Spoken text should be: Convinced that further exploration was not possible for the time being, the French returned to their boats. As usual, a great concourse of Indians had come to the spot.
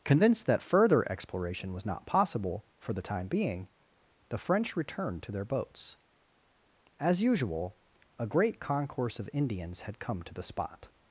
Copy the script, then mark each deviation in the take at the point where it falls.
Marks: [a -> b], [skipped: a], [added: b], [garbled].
Convinced that further exploration was not possible for the time being, the French returned to their boats. As usual, a great concourse of Indians had come to the spot.